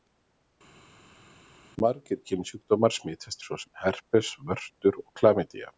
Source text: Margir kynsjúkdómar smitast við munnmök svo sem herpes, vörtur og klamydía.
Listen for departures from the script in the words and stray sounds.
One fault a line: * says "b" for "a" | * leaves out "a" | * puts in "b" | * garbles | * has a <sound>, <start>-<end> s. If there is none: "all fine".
* leaves out "við munnmök"